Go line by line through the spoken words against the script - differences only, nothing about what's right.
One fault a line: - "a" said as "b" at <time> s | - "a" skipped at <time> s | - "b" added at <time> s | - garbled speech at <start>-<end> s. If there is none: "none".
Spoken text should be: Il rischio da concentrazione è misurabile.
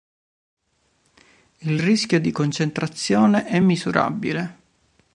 - "da" said as "di" at 2.2 s